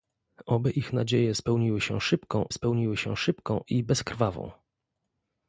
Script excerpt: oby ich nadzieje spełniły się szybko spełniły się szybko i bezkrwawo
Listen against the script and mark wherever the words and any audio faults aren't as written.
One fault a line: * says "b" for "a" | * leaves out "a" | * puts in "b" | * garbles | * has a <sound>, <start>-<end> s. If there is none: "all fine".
all fine